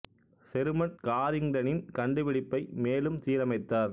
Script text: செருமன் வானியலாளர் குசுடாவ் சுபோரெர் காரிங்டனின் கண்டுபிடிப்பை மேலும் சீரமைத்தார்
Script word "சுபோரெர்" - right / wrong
wrong